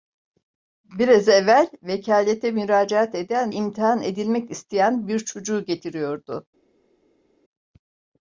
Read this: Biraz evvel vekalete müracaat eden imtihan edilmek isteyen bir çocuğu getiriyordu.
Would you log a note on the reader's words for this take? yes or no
no